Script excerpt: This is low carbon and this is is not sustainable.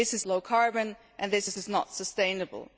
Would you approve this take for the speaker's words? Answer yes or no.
yes